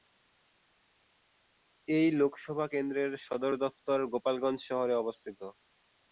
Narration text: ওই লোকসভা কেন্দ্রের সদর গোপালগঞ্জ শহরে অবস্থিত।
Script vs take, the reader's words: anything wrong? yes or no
yes